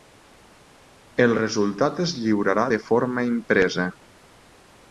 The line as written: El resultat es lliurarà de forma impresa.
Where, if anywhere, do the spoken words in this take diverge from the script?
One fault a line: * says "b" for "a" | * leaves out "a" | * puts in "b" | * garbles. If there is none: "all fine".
all fine